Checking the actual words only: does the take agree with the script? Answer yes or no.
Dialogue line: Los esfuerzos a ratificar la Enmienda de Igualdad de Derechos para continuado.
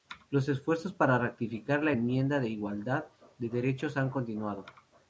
no